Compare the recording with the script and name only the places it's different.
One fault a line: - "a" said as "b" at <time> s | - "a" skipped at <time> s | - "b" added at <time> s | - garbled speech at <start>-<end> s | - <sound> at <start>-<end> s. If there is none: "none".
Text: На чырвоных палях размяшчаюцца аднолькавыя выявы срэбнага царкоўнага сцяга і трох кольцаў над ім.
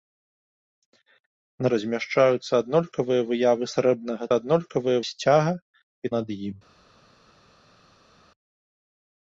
- "чырвоных палях" skipped at 1.7 s
- "царкоўнага" said as "аднолькавыя" at 4.4 s
- "трох кольцаў" skipped at 6.1 s